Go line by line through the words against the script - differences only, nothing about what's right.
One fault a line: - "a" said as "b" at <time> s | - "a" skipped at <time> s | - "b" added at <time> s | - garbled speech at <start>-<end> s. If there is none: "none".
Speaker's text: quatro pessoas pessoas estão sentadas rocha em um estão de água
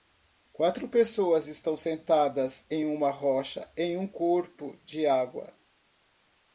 - "pessoas" skipped at 1.5 s
- "em uma" added at 2.7 s
- "estão" said as "corpo" at 4.0 s